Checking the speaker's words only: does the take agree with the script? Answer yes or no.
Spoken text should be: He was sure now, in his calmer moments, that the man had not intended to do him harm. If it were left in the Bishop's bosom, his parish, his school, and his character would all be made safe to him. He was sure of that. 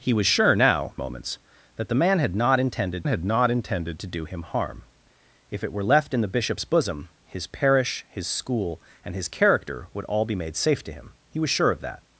no